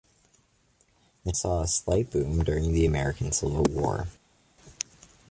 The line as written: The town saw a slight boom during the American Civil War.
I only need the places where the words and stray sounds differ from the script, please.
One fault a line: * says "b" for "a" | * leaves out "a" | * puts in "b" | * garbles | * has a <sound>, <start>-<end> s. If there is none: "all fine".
* leaves out "town"